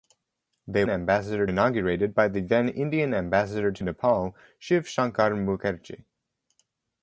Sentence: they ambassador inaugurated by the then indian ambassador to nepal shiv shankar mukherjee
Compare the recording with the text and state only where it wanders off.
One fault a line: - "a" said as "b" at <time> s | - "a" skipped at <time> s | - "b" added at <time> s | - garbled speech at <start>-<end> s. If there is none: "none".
none